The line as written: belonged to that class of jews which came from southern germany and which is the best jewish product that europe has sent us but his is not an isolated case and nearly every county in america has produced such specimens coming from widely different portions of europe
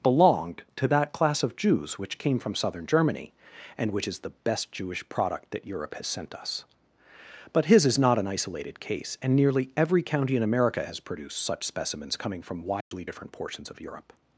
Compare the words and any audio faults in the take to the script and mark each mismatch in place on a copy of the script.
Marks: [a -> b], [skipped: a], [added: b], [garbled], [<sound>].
belonged to that class of jews which came from southern germany and which is the best jewish product that europe has sent us but his is not an isolated case and nearly every county in america has produced such specimens coming from widely [dropout] different portions of europe